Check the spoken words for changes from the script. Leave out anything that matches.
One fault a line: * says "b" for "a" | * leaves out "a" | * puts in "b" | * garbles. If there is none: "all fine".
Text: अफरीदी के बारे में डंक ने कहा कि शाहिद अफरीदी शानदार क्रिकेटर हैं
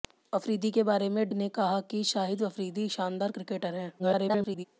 * leaves out "डंक"
* garbles